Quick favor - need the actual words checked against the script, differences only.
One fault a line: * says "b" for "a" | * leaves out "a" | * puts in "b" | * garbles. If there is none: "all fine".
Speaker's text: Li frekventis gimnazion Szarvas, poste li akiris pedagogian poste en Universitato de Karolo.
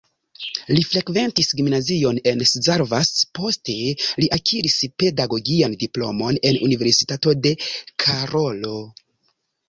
* puts in "en"
* says "diplomon" for "poste"